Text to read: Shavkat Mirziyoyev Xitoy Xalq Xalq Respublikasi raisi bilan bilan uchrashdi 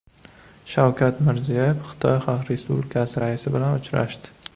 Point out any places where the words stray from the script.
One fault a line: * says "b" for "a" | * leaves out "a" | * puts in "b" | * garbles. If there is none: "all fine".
* leaves out "Xalq"
* leaves out "bilan"